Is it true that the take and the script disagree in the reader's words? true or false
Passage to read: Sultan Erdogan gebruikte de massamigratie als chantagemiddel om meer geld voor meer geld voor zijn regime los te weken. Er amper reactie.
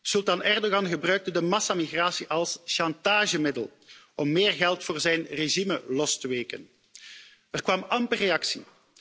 true